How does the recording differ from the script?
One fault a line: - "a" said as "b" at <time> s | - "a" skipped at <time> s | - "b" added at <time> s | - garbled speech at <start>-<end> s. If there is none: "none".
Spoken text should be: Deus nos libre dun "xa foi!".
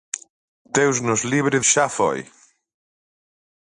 - "dun" skipped at 1.6 s